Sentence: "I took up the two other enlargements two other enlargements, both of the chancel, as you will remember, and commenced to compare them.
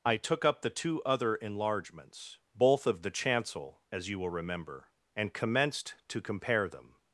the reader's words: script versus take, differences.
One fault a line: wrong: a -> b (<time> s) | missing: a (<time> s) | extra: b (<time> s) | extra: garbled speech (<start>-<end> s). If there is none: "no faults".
missing: two other enlargements (2.4 s)